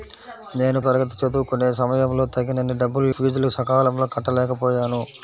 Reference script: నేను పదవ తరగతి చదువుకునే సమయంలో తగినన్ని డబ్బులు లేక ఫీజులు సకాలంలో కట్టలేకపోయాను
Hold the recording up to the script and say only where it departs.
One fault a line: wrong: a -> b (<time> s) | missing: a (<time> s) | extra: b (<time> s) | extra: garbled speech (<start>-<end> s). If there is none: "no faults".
missing: పదవ (0.8 s)
missing: లేక (3.1 s)